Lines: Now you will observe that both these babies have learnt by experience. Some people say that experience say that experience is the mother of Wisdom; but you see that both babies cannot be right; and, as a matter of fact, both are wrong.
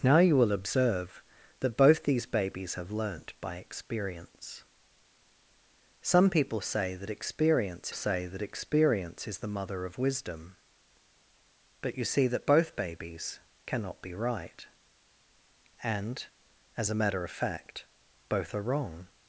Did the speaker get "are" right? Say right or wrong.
right